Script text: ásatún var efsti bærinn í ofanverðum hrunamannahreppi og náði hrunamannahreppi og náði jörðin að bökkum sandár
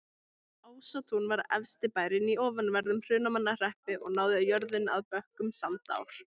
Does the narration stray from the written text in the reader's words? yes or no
yes